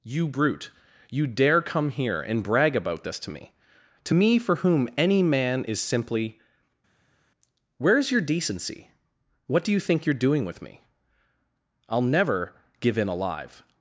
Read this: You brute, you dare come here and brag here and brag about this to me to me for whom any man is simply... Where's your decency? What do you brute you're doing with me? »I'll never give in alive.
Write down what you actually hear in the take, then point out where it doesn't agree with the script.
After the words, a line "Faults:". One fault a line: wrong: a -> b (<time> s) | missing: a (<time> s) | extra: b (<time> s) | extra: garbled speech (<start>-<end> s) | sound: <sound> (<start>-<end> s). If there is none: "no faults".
You brute, you dare come here and brag about this to me to me for whom any man is simply... Where's your decency? What do you think you're doing with me? »I'll never give in alive.
Faults:
missing: here and brag (2.8 s)
wrong: brute -> think (9.8 s)